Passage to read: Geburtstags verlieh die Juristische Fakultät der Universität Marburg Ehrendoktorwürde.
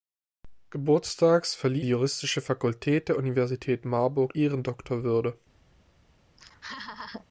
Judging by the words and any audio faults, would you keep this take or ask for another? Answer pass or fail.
fail